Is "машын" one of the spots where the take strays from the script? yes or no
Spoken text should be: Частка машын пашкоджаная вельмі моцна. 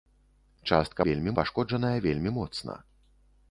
yes